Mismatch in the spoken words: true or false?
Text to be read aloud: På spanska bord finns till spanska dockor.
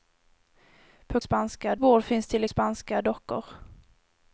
false